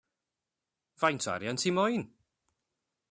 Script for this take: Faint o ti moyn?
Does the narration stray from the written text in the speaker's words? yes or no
yes